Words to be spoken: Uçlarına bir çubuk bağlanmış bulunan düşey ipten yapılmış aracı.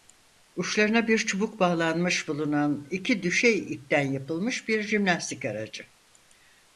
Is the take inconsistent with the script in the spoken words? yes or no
yes